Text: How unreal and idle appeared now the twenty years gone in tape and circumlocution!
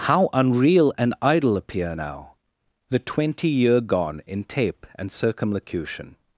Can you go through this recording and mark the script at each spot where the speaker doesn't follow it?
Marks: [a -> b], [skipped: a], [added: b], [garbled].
How unreal and idle [appeared -> appear] now the twenty [years -> year] gone in tape and circumlocution!